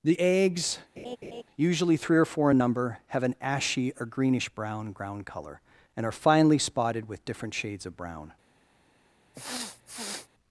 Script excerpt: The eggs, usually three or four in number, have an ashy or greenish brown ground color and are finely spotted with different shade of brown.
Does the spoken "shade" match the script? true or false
false